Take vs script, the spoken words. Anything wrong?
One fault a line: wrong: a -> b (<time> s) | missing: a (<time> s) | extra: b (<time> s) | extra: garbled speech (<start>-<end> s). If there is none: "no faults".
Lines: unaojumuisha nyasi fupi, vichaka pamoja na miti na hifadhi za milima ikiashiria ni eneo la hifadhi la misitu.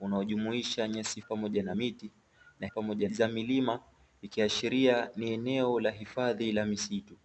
missing: fupi vichaka (1.2 s)
wrong: hifadhi -> pamoja (2.7 s)